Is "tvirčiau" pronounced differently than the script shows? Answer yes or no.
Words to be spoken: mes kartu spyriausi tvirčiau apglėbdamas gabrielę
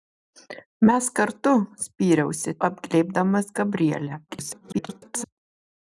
yes